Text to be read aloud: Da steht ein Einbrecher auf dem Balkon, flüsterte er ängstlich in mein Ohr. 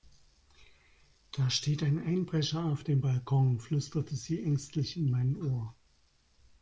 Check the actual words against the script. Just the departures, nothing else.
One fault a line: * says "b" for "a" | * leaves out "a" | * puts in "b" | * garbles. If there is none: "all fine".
* says "sie" for "er"